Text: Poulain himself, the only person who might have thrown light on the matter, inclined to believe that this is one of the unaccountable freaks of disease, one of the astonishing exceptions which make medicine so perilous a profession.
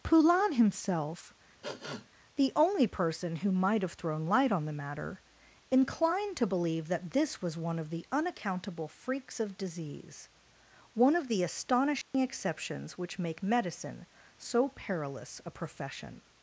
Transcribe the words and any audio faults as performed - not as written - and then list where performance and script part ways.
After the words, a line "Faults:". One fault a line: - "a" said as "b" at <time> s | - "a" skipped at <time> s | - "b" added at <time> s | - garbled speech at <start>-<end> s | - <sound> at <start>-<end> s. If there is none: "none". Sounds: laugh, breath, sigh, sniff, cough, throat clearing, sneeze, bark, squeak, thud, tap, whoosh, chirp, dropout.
Poulain himself, the only person who might have thrown light on the matter, inclined to believe that this was one of the unaccountable freaks of disease, one of the astonishing exceptions which make medicine so perilous a profession.
Faults:
- sniff at 1.6-2.1 s
- "is" said as "was" at 7.4 s
- dropout at 12.0-12.1 s